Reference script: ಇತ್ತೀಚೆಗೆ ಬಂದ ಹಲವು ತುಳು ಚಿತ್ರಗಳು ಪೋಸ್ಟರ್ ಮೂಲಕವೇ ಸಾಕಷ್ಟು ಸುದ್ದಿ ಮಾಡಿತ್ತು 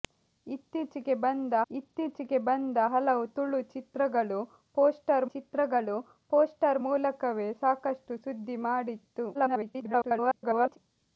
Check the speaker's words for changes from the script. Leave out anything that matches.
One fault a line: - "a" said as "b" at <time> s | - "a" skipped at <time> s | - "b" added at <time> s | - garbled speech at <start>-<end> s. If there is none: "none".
- "ಇತ್ತೀಚೆಗೆ ಬಂದ" added at 1.7 s
- "ಚಿತ್ರಗಳು ಪೋಸ್ಟರ್" added at 5.3 s
- garbled speech at 9.3-10.8 s